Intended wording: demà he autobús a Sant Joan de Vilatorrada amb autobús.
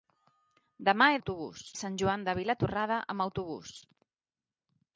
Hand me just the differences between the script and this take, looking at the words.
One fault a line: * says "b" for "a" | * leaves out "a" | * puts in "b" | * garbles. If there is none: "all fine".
all fine